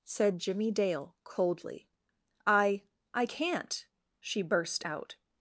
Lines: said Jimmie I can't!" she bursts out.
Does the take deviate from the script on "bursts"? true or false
true